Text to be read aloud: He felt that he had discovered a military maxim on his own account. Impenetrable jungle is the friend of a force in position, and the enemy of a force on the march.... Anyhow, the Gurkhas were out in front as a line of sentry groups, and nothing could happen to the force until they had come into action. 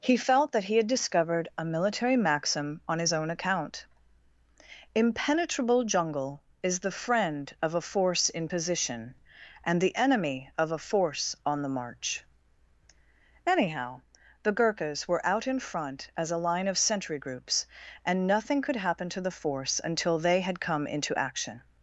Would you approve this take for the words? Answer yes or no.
yes